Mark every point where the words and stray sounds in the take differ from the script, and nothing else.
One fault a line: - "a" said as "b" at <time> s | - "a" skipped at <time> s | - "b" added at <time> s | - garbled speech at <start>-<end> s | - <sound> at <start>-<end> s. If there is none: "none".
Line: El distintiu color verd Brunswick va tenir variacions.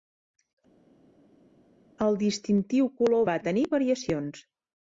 - "verd Brunswick" skipped at 3.2 s